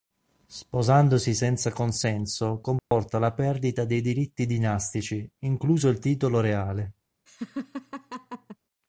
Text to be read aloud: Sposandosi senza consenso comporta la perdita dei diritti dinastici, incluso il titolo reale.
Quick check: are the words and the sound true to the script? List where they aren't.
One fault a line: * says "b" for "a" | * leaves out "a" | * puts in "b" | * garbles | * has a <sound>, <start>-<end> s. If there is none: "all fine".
* has a dropout, 2.8-2.9 s
* has a laugh, 7.3-8.6 s